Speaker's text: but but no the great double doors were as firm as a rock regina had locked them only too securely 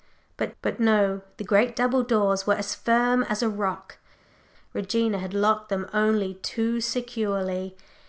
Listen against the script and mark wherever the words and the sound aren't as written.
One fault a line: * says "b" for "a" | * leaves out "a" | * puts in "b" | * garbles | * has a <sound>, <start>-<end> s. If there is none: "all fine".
all fine